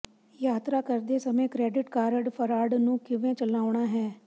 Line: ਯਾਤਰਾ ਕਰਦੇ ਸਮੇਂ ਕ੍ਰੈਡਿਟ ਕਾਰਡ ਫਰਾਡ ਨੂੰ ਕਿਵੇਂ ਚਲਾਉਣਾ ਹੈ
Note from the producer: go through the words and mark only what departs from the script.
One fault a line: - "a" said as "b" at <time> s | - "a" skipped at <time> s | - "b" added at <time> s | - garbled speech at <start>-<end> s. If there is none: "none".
none